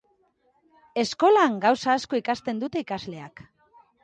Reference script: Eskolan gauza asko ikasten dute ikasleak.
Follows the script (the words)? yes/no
yes